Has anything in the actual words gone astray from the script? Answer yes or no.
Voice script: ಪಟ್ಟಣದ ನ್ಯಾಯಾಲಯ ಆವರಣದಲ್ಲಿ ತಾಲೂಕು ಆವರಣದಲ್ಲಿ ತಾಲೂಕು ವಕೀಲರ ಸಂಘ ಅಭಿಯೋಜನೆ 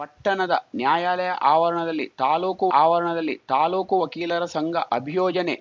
no